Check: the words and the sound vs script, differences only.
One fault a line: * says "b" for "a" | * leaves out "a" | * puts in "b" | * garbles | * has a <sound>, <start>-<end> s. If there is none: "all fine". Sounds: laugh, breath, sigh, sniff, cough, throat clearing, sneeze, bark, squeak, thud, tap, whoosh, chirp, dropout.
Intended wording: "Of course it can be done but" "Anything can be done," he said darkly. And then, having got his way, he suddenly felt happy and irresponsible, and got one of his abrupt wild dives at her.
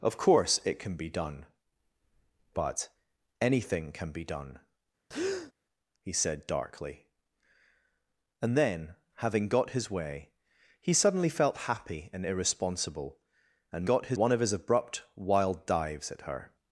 * has a breath, 5.1-5.5 s